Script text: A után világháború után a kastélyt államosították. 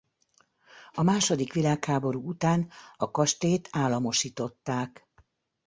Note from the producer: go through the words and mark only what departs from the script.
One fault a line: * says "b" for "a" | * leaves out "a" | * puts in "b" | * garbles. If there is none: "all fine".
* says "második" for "után"